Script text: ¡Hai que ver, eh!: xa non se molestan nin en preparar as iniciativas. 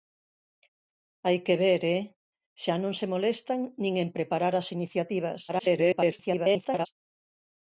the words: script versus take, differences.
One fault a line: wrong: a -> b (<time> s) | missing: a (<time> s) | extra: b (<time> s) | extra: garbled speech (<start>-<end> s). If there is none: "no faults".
extra: garbled speech (5.5-6.9 s)